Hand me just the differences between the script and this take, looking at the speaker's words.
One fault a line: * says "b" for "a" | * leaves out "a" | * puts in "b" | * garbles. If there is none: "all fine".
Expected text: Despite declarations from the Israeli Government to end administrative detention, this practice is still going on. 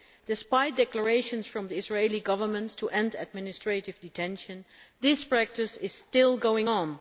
all fine